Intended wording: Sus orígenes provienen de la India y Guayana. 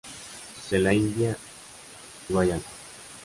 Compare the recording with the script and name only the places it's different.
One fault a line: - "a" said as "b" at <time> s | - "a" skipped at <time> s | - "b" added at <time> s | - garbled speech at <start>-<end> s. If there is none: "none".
- "orígenes provienen" skipped at 0.7 s
- "y" skipped at 1.4 s